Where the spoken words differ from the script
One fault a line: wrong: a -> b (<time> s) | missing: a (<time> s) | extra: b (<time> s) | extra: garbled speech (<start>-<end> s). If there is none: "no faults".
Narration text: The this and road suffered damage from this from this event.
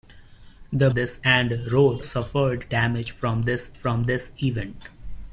no faults